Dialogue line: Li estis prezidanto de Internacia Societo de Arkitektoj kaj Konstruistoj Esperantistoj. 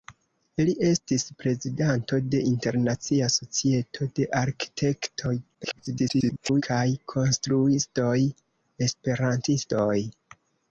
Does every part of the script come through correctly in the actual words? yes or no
no